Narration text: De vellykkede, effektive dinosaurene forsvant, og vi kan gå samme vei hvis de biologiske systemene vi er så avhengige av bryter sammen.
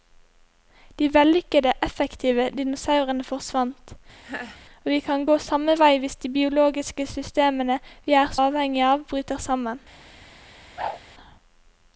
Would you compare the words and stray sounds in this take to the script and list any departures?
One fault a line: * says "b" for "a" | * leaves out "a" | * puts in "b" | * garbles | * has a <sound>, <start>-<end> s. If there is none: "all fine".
* has a laugh, 4.2-4.6 s
* leaves out "så"
* has a whoosh, 10.8-11.0 s